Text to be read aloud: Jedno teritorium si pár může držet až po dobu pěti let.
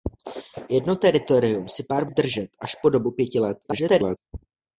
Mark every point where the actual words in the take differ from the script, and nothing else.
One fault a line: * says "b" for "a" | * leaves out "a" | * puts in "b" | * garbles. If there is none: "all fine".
* leaves out "může"
* garbles